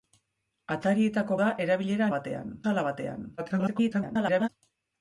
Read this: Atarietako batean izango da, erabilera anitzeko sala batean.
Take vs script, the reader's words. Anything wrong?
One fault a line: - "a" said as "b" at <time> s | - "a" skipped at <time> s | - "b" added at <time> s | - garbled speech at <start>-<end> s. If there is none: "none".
- "batean izango" skipped at 1.4 s
- "anitzeko" said as "batean" at 2.1 s
- garbled speech at 3.4-4.5 s